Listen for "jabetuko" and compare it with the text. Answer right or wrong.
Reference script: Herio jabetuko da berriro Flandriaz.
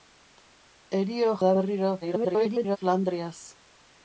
wrong